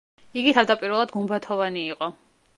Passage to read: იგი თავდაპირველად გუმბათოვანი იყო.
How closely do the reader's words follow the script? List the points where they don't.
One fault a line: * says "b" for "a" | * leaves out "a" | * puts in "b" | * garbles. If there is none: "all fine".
all fine